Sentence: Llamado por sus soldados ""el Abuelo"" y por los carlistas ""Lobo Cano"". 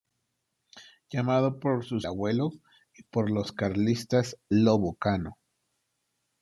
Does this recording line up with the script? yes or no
no